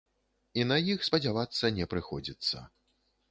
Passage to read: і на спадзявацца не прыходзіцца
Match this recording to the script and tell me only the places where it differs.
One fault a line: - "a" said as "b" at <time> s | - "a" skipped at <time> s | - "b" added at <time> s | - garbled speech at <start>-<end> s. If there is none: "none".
- "іх" added at 0.9 s